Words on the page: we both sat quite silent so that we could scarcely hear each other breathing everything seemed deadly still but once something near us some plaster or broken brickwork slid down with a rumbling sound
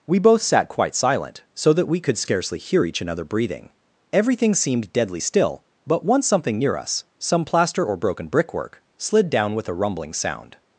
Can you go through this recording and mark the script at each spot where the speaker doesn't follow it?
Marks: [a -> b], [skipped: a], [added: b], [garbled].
we both sat quite silent so that we could scarcely hear each [other -> another] breathing everything seemed deadly still but once something near us some plaster or broken brickwork slid down with a rumbling sound